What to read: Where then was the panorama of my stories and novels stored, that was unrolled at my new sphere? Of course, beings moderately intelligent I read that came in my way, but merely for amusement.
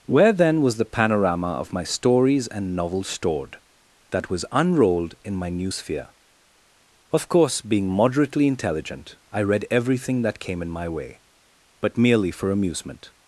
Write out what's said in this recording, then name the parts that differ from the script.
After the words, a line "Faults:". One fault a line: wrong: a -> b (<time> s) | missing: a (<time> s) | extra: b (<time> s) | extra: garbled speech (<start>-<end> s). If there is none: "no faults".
Where then was the panorama of my stories and novels stored, that was unrolled in my new sphere? Of course, being moderately intelligent I read everything that came in my way, but merely for amusement.
Faults:
wrong: at -> in (5.2 s)
wrong: beings -> being (7.6 s)
extra: everything (9.7 s)